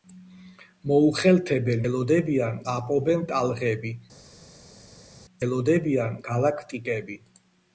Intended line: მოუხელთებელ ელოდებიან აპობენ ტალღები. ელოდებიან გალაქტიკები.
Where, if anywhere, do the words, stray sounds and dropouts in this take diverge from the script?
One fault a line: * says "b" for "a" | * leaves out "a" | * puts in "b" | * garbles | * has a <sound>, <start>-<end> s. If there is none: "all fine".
all fine